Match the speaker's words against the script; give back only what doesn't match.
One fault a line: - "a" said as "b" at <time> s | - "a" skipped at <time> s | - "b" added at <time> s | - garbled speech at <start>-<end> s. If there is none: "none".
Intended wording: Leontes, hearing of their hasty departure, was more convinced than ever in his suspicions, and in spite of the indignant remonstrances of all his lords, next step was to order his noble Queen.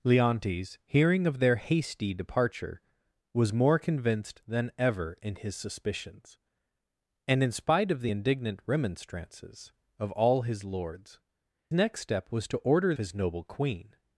none